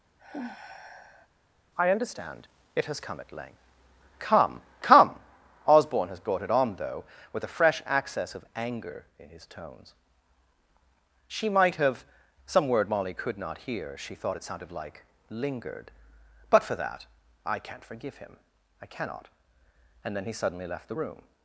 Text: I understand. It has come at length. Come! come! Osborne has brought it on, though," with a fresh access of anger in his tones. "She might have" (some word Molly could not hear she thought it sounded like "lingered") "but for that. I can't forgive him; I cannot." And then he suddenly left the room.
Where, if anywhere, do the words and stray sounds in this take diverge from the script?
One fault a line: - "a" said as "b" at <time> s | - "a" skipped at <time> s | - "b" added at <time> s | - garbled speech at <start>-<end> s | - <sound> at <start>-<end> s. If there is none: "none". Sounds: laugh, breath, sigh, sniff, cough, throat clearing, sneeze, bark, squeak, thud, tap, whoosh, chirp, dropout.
- sigh at 0.2-1.3 s